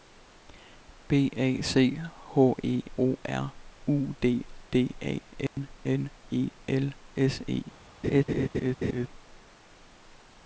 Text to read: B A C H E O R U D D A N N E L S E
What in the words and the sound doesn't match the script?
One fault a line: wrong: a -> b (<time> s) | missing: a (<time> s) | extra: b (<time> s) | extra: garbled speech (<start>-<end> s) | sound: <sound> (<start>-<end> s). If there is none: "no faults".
sound: dropout (5.5-5.6 s)
sound: laugh (8.0-9.1 s)